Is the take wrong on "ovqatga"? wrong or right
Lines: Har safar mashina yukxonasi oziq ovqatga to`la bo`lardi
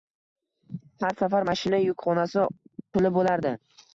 wrong